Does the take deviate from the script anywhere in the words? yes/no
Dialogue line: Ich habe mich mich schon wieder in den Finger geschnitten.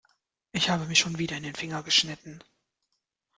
yes